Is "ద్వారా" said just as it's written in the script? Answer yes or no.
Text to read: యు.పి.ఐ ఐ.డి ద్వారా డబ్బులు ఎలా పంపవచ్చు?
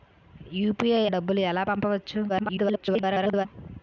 no